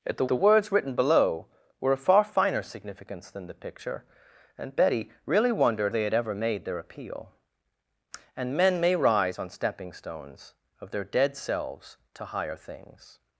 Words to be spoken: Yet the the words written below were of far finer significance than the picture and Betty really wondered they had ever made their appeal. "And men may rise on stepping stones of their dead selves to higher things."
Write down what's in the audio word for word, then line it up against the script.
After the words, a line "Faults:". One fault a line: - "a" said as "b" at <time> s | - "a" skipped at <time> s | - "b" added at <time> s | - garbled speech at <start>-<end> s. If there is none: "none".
Yet the the words written below were of far finer significance than the picture and Betty really wondered they had ever made their appeal. "And men may rise on stepping stones of their dead selves to higher things."
Faults:
none